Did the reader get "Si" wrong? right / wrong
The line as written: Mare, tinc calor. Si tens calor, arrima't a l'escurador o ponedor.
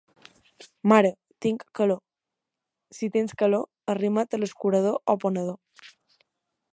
right